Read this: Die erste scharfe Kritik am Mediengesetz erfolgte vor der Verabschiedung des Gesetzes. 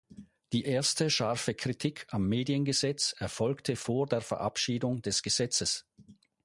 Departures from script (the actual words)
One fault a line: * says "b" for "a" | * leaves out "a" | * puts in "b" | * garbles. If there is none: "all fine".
all fine